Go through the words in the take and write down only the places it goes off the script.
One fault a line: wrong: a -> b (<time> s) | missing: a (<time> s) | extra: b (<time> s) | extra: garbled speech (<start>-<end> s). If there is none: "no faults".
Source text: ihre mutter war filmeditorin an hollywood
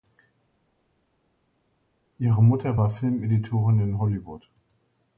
wrong: an -> in (3.8 s)